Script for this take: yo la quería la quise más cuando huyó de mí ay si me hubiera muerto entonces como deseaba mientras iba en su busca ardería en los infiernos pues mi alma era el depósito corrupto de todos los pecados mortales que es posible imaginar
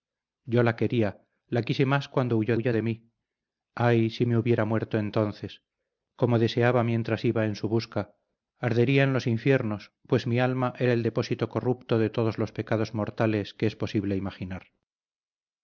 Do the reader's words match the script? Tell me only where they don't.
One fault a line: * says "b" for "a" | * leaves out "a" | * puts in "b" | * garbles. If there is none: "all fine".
* puts in "huyó"